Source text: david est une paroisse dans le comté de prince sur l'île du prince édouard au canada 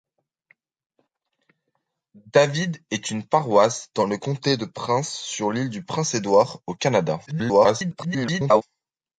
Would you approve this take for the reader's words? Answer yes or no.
no